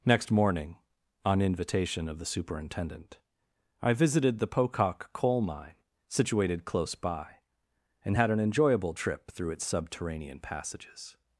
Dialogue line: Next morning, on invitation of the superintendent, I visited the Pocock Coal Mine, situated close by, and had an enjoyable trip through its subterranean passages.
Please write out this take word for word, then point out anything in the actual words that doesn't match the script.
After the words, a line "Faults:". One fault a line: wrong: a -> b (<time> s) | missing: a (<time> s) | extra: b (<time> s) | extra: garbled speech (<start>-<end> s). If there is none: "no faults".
Next morning, on invitation of the superintendent, I visited the Pocock Coal Mine, situated close by, and had an enjoyable trip through its subterranean passages.
Faults:
no faults